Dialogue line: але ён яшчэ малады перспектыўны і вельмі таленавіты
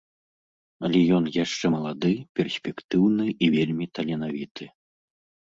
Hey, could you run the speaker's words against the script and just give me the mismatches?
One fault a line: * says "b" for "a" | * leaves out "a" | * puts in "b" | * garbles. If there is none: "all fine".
all fine